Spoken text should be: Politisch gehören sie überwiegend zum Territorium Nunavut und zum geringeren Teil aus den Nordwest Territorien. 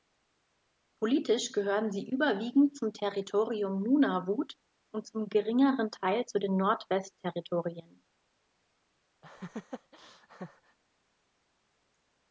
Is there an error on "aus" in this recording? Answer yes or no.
yes